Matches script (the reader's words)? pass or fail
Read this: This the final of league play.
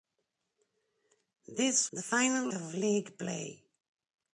pass